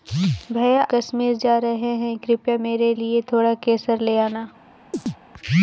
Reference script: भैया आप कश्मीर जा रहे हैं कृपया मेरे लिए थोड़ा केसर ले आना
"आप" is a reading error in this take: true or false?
true